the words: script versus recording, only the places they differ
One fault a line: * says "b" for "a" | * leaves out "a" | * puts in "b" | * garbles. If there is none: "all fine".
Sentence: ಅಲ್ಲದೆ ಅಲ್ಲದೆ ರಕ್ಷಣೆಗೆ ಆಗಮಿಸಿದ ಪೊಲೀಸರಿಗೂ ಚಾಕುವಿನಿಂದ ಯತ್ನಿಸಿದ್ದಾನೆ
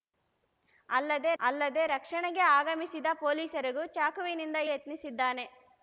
all fine